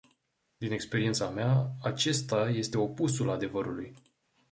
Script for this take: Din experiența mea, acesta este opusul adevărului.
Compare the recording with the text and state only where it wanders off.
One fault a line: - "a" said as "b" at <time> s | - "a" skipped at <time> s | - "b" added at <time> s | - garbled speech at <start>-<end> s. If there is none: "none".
none